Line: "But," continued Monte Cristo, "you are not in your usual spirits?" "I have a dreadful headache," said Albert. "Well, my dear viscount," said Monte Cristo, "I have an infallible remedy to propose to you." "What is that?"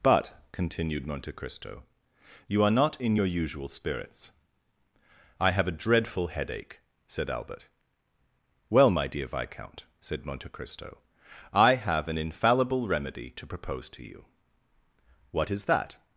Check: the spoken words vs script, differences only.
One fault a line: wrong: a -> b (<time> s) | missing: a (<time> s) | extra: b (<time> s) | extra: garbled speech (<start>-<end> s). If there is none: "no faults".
no faults